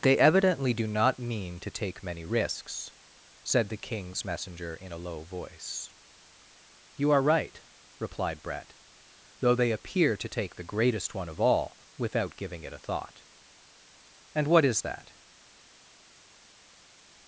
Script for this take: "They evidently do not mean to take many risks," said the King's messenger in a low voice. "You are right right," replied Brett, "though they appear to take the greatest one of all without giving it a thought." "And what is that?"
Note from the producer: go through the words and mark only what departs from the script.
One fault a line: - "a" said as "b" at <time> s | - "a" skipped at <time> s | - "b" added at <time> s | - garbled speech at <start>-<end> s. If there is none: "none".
- "right" skipped at 7.6 s